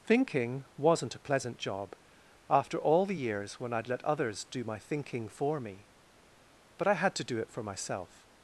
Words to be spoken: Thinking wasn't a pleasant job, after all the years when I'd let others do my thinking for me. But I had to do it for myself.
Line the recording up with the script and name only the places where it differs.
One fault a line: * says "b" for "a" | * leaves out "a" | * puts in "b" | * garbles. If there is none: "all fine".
all fine